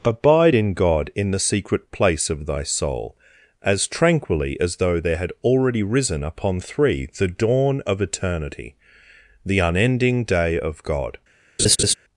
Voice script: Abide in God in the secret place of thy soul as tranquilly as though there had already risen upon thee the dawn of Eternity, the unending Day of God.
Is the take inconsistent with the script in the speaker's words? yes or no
yes